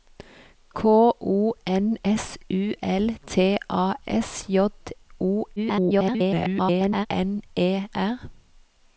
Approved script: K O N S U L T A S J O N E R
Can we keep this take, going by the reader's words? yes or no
no